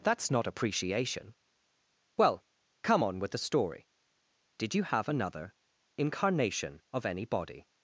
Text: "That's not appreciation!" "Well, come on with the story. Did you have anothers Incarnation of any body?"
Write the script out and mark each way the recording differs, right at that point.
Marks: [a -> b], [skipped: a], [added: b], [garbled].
"That's not appreciation!" "Well, come on with the story. Did you have [anothers -> another] Incarnation of any body?"